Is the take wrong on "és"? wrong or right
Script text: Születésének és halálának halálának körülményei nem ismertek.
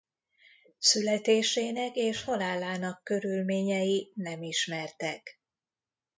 right